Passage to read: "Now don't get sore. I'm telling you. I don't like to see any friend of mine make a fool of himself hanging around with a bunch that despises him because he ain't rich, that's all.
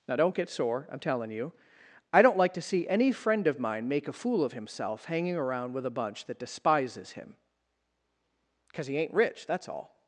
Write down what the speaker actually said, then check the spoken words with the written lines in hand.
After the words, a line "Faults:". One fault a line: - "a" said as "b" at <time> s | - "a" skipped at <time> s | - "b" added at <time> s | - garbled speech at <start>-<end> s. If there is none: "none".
"Now don't get sore. I'm telling you. I don't like to see any friend of mine make a fool of himself hanging around with a bunch that despises him because he ain't rich, that's all.
Faults:
none